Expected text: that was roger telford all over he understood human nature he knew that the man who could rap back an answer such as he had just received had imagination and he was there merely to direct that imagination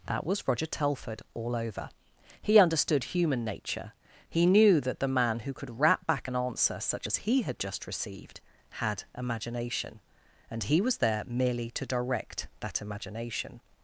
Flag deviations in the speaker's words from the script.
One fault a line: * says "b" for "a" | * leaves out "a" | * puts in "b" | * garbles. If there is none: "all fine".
all fine